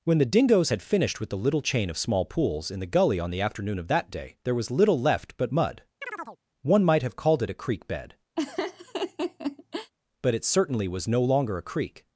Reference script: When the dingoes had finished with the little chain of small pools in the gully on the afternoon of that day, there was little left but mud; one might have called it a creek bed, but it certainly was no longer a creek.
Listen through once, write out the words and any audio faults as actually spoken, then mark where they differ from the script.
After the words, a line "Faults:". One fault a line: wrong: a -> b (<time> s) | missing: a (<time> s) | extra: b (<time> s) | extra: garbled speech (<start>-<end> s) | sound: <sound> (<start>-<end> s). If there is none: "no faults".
When the dingoes had finished with the little chain of small pools in the gully on the afternoon of that day, there was little left but mud; one might have called it a creek bed, but it certainly was no longer a creek.
Faults:
sound: chirp (6.0-6.4 s)
sound: laugh (8.4-9.9 s)